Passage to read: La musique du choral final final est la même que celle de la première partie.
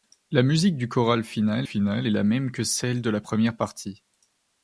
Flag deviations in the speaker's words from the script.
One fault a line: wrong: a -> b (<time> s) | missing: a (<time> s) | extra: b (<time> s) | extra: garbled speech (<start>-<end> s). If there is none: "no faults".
no faults